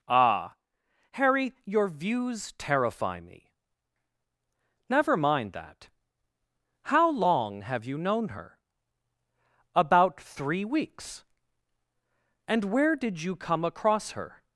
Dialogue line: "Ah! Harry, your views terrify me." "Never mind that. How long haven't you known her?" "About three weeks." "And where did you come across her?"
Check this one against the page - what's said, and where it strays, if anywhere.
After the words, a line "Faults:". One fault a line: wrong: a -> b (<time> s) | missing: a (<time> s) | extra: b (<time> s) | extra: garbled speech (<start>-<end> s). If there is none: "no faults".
"Ah! Harry, your views terrify me." "Never mind that. How long have you known her?" "About three weeks." "And where did you come across her?"
Faults:
wrong: haven't -> have (7.6 s)